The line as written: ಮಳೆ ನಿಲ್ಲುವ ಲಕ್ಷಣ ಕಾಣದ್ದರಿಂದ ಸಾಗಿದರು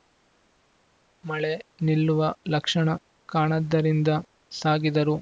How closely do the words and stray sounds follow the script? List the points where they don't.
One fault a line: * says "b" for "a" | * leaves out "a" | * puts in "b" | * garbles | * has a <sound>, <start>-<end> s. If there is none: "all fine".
all fine